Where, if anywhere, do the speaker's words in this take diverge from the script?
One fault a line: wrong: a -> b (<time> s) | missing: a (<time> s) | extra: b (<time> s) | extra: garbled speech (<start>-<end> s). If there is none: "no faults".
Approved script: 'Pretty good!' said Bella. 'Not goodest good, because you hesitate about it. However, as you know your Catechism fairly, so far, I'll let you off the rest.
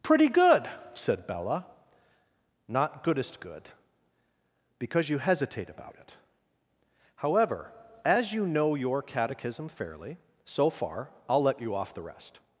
no faults